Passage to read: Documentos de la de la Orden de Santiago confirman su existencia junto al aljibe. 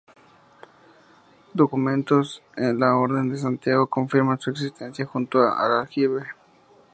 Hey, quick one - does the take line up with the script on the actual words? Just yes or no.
no